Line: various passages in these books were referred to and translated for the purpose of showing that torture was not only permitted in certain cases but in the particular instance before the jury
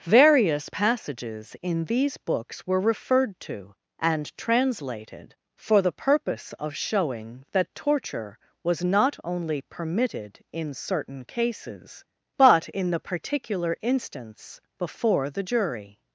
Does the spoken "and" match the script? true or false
true